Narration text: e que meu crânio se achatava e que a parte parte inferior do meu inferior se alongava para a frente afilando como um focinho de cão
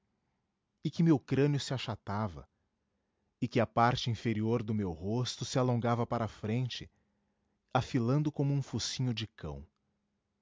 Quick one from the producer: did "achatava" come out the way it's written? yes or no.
yes